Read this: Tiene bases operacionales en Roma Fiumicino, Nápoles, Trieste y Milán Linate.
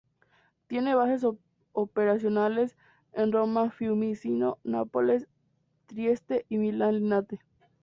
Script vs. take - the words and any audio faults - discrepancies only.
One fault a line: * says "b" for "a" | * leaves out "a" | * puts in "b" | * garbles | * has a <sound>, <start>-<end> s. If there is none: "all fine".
all fine